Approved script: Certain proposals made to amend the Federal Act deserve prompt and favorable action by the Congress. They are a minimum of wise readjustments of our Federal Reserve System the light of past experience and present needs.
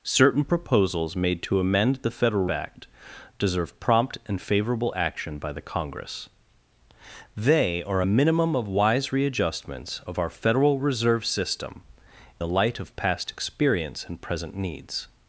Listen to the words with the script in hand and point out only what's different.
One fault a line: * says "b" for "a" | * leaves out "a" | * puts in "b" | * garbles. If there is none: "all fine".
all fine